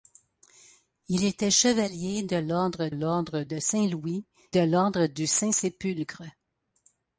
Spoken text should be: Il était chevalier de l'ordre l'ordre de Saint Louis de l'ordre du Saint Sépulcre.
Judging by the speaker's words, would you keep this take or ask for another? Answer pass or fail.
pass